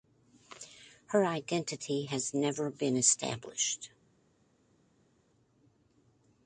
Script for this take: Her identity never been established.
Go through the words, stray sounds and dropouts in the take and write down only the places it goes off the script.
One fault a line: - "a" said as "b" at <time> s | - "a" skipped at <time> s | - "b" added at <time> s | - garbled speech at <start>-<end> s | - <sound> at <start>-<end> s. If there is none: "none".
- "has" added at 2.0 s